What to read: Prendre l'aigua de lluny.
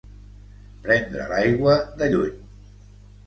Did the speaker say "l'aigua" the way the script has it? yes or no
yes